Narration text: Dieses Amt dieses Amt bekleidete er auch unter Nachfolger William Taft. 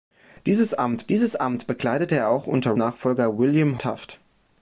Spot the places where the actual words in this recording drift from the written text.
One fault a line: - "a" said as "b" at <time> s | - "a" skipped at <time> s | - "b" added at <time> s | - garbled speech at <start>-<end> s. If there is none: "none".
none